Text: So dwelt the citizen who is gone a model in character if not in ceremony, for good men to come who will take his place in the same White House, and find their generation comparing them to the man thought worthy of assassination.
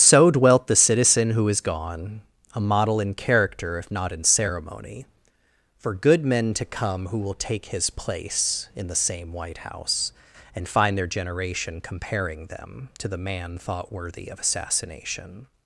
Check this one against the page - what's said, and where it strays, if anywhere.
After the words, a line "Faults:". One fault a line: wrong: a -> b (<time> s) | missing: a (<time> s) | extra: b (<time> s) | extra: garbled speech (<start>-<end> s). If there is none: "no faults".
So dwelt the citizen who is gone a model in character if not in ceremony, for good men to come who will take his place in the same White House, and find their generation comparing them to the man thought worthy of assassination.
Faults:
no faults